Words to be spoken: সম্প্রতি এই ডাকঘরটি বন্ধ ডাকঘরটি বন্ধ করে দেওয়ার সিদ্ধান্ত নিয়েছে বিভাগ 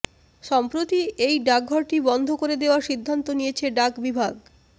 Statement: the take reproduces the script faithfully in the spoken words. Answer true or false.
false